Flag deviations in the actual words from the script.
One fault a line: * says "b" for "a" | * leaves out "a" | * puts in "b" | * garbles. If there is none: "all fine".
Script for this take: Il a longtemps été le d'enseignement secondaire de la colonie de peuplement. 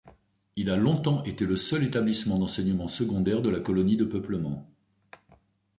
* puts in "seul établissement"